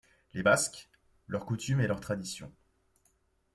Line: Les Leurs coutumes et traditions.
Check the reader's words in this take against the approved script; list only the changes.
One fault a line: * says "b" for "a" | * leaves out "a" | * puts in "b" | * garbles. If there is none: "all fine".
* puts in "Basques"
* puts in "leurs"